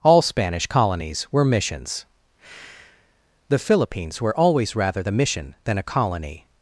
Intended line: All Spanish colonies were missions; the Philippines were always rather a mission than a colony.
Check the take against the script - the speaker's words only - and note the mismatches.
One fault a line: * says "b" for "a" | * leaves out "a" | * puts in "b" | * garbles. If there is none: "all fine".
* says "the" for "a"